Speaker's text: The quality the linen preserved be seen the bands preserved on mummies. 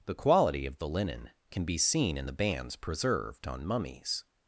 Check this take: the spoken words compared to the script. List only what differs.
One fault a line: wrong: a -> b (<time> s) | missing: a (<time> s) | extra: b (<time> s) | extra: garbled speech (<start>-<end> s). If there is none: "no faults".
extra: of (0.7 s)
wrong: preserved -> can (1.5 s)
extra: in (2.2 s)